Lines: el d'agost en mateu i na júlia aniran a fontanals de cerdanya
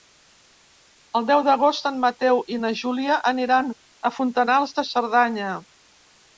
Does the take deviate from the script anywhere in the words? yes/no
yes